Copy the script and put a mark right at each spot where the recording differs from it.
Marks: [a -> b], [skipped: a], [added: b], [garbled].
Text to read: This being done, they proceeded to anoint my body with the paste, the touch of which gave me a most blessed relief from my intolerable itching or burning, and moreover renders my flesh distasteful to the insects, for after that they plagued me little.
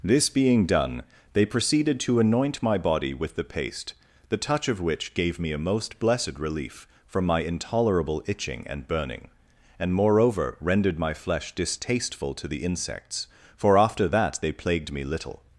This being done, they proceeded to anoint my body with the paste, the touch of which gave me a most blessed relief from my intolerable itching [or -> and] burning, and moreover [renders -> rendered] my flesh distasteful to the insects, for after that they plagued me little.